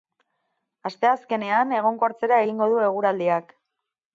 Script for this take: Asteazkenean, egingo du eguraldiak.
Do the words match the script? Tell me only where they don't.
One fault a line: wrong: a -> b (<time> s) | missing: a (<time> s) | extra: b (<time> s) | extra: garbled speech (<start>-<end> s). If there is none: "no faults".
extra: egonkortzera (1.8 s)